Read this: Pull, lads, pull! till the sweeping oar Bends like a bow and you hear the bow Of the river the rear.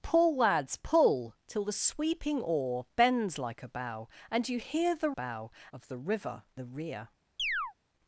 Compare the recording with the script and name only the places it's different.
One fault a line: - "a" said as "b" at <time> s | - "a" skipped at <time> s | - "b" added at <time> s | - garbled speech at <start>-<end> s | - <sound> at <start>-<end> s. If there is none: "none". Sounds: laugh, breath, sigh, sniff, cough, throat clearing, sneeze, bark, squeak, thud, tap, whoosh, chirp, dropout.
- chirp at 7.4-7.7 s